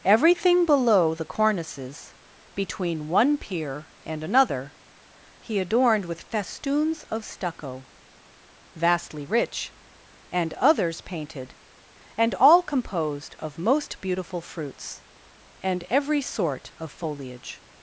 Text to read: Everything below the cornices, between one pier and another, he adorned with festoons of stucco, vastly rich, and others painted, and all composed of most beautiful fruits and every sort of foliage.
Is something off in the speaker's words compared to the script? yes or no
no